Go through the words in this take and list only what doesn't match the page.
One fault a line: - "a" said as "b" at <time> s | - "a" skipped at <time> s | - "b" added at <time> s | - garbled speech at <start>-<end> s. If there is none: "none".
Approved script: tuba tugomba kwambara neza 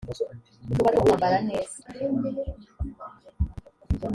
none